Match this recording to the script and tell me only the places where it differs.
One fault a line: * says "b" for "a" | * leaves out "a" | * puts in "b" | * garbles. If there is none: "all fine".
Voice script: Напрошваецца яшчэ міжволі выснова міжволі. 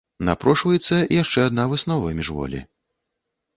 * says "адна" for "міжволі"